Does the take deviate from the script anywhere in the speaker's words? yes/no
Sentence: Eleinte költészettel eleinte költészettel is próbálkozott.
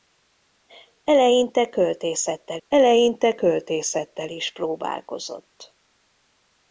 no